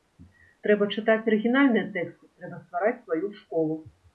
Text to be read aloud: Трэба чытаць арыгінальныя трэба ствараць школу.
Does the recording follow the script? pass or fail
fail